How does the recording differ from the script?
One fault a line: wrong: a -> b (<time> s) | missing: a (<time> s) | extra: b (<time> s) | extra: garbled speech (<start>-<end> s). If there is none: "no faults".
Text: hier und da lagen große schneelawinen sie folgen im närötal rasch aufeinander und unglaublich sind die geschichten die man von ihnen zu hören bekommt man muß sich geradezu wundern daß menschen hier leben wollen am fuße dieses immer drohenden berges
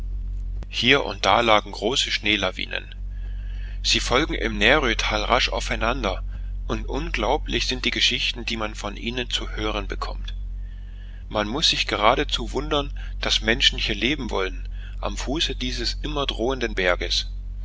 no faults